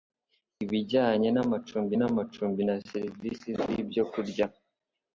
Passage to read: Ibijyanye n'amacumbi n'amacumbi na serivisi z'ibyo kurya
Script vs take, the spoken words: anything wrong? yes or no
no